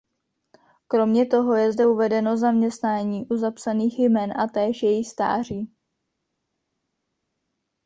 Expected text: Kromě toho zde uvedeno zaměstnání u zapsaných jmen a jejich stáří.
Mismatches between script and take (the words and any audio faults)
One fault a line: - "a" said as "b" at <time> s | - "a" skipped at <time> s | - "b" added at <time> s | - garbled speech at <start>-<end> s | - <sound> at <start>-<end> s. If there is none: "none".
- "je" added at 1.6 s
- "též" added at 4.5 s